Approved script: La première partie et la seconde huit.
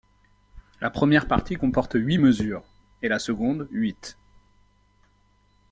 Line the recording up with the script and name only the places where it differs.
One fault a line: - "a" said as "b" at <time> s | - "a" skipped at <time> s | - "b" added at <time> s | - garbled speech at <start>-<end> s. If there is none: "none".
- "comporte huit mesures" added at 1.5 s